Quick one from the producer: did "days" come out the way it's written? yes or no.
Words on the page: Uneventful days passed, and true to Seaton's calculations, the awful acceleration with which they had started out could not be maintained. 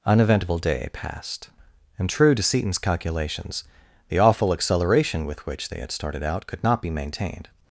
no